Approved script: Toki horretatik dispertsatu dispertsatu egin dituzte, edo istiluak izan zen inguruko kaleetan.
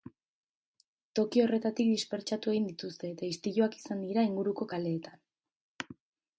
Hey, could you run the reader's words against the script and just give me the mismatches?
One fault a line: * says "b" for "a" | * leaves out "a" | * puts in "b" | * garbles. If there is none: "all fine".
* leaves out "dispertsatu"
* says "eta" for "edo"
* says "dira" for "zen"